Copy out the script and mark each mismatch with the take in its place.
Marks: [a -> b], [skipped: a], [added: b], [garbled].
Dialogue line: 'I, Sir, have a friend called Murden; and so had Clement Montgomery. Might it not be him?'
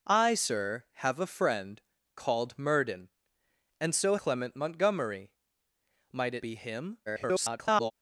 'I, Sir, have a friend called Murden; and so [skipped: had] Clement Montgomery. Might it [skipped: not] be him?' [garbled]